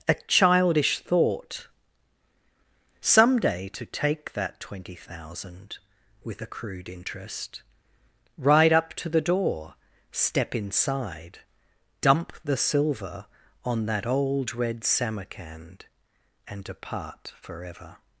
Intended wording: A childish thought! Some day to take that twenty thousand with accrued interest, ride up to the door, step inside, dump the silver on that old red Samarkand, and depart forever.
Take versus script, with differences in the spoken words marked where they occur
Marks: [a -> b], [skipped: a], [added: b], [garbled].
A childish thought! Some day to take that twenty thousand with accrued interest, ride up to the door, step inside, dump the silver on that old red Samarkand, and depart forever.